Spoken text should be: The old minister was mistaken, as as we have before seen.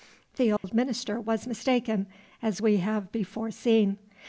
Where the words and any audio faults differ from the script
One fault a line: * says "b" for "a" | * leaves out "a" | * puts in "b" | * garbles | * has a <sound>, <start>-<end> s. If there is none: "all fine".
* has a dropout, 0.6-0.6 s
* leaves out "as"